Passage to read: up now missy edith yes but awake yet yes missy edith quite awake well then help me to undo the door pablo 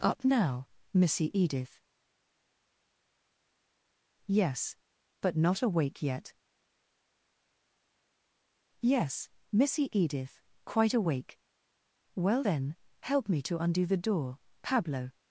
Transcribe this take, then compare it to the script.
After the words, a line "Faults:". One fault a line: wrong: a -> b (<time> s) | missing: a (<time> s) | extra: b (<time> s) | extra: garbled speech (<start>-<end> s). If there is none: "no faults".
up now missy edith yes but not awake yet yes missy edith quite awake well then help me to undo the door pablo
Faults:
extra: not (5.4 s)